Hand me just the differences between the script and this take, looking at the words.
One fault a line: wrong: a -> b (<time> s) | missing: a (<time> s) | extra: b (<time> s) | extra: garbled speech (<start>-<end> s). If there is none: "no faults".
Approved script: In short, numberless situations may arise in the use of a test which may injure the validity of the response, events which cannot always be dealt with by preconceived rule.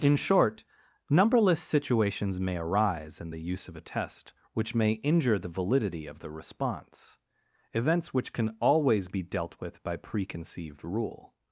wrong: cannot -> can (8.3 s)